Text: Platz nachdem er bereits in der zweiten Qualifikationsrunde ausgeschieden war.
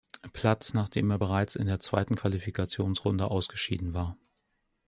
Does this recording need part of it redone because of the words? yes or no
no